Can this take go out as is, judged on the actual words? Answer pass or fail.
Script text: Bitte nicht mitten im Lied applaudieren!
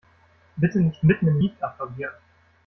pass